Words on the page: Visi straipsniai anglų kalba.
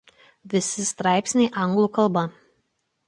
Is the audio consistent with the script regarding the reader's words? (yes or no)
yes